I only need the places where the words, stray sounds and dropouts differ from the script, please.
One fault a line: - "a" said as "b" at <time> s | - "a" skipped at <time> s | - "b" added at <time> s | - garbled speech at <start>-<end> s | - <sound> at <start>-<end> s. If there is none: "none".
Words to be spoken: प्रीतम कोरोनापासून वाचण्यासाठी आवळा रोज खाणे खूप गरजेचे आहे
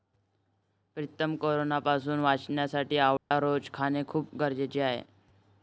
- dropout at 3.2-3.3 s